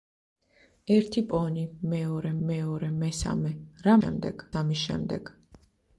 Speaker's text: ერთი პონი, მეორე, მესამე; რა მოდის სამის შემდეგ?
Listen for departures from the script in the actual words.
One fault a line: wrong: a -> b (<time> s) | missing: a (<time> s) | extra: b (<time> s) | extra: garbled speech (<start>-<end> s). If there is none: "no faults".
extra: მეორე (2.5 s)
wrong: მოდის -> შემდეგ (4.0 s)